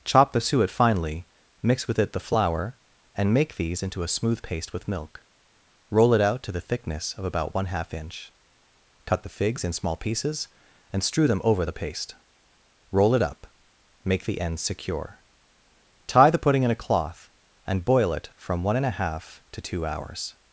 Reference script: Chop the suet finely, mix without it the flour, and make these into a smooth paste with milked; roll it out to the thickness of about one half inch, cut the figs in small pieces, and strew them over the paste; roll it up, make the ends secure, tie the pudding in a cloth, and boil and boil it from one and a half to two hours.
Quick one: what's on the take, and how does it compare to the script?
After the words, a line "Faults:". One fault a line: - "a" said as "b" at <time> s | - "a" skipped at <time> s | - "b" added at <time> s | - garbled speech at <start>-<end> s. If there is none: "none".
Chop the suet finely, mix with it the flour, and make these into a smooth paste with milk; roll it out to the thickness of about one half inch, cut the figs in small pieces, and strew them over the paste; roll it up, make the ends secure, tie the pudding in a cloth, and boil it from one and a half to two hours.
Faults:
- "without" said as "with" at 1.9 s
- "milked" said as "milk" at 4.9 s
- "and boil" skipped at 18.1 s